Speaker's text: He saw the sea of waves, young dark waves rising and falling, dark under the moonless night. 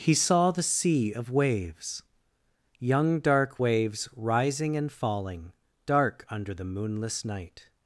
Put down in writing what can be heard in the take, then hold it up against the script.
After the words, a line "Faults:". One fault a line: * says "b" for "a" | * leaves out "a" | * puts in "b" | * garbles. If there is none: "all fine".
He saw the sea of waves, young dark waves rising and falling, dark under the moonless night.
Faults:
all fine